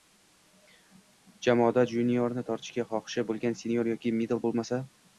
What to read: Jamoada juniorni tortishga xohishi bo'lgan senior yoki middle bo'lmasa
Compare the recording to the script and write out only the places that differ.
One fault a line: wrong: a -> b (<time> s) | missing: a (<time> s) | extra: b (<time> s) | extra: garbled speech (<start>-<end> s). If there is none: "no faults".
no faults